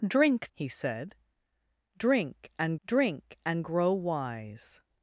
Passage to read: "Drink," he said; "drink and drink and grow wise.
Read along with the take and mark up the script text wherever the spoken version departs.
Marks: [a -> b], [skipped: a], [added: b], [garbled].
"Drink," he said; "drink and drink and grow wise.